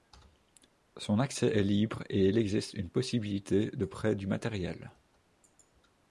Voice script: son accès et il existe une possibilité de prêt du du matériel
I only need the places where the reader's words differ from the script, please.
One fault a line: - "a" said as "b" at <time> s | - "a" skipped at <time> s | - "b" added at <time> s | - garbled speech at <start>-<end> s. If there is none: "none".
- "est libre" added at 1.5 s
- "du" skipped at 4.3 s